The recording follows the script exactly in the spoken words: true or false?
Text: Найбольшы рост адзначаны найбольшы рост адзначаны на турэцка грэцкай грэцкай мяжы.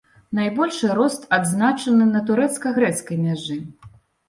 false